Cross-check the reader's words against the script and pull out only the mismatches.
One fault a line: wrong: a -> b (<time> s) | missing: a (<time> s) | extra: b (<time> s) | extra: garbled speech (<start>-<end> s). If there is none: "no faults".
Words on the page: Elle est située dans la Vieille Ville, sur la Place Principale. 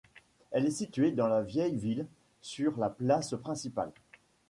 no faults